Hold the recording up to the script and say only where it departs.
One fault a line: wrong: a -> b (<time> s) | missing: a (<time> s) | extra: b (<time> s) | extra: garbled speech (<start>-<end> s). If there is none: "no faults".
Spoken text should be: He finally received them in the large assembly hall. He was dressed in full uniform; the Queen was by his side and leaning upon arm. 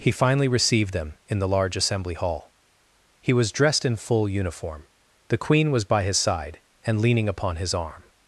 extra: his (7.6 s)